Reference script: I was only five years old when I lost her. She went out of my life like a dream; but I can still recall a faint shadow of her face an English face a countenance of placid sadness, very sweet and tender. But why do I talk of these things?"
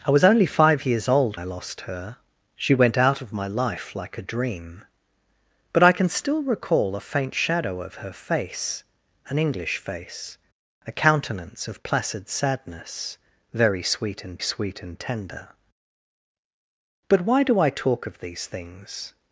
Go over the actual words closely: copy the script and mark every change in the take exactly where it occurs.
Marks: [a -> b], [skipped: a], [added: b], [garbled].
I was only five years old [skipped: when] I lost her. She went out of my life like a dream; but I can still recall a faint shadow of her face an English face a countenance of placid sadness, very sweet and [added: sweet and] tender. But why do I talk of these things?"